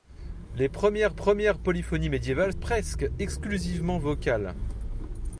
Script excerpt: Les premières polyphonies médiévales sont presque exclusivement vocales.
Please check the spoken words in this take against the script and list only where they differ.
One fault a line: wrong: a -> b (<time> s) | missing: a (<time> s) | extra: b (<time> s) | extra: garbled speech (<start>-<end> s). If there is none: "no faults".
extra: premières (1.1 s)
missing: sont (2.5 s)